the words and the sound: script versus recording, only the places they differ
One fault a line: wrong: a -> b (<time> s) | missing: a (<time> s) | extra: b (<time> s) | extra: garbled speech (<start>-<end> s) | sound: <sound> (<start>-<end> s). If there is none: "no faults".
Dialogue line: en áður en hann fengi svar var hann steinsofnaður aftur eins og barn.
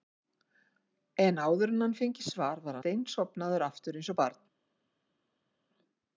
missing: hann (2.8 s)